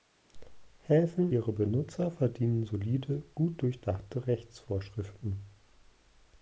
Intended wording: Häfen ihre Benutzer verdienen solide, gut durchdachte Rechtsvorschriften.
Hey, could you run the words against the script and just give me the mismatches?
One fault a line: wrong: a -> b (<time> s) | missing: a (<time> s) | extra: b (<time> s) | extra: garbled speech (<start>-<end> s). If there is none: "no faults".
no faults